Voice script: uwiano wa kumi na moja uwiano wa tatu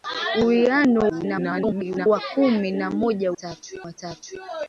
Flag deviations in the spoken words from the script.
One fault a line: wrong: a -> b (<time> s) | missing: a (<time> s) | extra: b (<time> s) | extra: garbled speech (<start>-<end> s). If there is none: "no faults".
extra: garbled speech (1.1-2.1 s)
wrong: uwiano -> tatu (3.3 s)